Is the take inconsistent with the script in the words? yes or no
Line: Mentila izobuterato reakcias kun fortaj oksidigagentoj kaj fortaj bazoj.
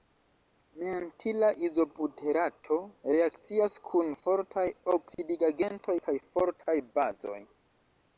no